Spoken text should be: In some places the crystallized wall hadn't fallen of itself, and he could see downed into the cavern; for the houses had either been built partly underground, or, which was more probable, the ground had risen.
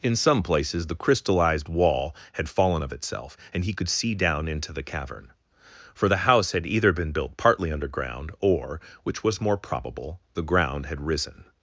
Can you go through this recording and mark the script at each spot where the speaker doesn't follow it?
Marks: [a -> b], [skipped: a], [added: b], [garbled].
In some places the crystallized wall [hadn't -> had] fallen of itself, and he could see [downed -> down] into the cavern; for the [houses -> house] had either been built partly underground, or, which was more probable, the ground had risen.